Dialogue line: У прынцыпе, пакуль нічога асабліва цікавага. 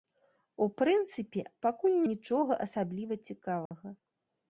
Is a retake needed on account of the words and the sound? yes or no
yes